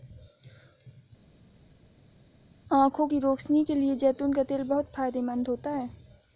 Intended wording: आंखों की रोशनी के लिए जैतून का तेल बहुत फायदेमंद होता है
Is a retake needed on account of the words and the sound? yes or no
no